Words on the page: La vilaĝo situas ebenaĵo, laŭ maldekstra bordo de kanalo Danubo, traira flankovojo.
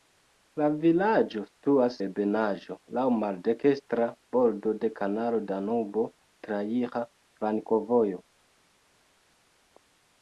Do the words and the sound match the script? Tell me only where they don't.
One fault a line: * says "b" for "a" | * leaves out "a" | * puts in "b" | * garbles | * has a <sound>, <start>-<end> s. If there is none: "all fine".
all fine